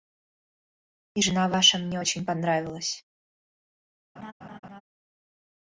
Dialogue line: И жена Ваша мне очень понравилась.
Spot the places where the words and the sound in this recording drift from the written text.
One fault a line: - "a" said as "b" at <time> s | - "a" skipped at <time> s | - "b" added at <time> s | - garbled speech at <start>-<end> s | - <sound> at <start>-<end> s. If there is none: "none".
- laugh at 4.2-4.8 s